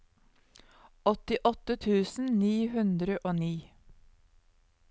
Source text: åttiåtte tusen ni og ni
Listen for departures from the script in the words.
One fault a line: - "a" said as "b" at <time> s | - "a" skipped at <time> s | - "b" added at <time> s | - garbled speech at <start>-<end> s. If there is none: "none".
- "hundre" added at 2.8 s